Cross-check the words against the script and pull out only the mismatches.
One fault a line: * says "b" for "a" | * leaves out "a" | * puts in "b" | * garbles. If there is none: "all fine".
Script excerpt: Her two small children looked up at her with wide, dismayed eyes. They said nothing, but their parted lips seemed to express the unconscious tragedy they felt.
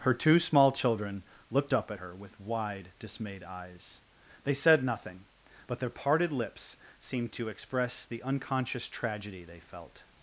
all fine